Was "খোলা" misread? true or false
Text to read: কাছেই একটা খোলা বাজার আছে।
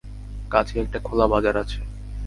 false